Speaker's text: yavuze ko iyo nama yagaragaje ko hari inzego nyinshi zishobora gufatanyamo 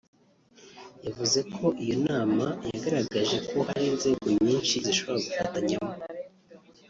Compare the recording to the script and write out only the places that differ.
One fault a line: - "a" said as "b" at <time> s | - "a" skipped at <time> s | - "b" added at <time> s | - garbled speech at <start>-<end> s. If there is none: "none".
none